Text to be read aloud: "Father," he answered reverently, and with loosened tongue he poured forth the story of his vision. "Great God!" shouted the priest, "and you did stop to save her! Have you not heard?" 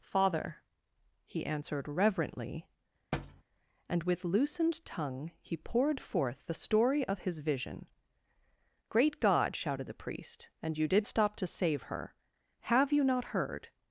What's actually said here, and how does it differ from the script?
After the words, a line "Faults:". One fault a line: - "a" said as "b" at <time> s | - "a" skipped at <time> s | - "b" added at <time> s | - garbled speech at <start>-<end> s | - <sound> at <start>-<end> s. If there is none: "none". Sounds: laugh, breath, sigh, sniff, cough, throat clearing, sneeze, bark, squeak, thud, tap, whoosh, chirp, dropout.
"Father," he answered reverently, and with loosened tongue he poured forth the story of his vision. "Great God!" shouted the priest, "and you did stop to save her! Have you not heard?"
Faults:
- thud at 3.1-3.4 s